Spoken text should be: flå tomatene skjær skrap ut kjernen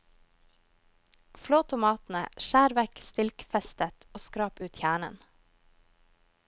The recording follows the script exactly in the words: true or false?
false